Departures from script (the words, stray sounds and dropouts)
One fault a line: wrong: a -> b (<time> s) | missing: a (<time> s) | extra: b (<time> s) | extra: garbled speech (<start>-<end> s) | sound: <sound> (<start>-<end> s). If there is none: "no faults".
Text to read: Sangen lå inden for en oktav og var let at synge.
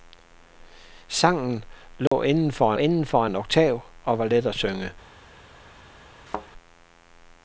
sound: dropout (2.1-2.1 s)
extra: inden for (2.8 s)
sound: thud (6.3-6.5 s)